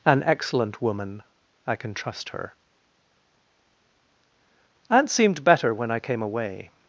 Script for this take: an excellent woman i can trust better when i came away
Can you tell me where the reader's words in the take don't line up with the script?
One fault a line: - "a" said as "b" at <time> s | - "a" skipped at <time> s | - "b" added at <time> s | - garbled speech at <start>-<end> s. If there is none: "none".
- "her aunt seemed" added at 2.3 s